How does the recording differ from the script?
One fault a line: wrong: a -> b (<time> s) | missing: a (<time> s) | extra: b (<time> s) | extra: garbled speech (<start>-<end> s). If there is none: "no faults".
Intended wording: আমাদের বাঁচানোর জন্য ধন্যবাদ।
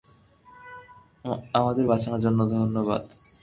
no faults